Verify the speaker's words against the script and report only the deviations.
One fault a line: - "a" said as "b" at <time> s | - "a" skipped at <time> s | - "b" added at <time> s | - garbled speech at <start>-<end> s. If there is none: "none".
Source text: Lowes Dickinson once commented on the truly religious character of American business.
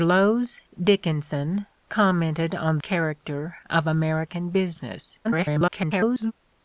- "once" skipped at 1.7 s
- "the truly religious" skipped at 2.8 s
- garbled speech at 5.2-6.3 s